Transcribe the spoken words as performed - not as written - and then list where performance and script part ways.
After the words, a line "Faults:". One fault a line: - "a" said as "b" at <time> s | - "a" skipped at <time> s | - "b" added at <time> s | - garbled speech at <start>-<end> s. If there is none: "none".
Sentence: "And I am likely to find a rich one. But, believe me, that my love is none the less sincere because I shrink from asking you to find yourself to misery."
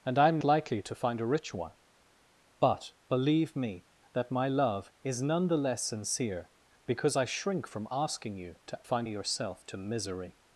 "And I am likely to find a rich one. But, believe me, that my love is none the less sincere because I shrink from asking you to find yourself to misery."
Faults:
none